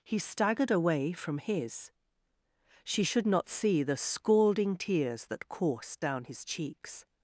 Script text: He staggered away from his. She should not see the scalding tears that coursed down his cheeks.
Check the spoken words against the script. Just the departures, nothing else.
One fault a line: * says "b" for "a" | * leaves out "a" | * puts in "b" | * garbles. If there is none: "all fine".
all fine